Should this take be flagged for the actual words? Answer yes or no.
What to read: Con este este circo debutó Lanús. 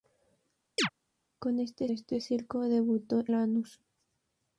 no